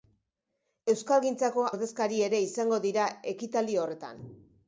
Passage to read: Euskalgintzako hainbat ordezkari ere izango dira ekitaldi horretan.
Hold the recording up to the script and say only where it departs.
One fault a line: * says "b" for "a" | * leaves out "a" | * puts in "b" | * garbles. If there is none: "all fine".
* leaves out "hainbat"